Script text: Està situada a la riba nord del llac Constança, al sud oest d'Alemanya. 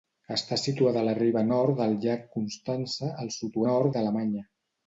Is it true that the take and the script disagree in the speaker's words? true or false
true